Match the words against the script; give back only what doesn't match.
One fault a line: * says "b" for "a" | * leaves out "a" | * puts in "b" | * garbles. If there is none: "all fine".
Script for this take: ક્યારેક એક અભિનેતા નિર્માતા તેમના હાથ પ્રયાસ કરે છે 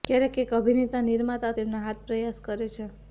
all fine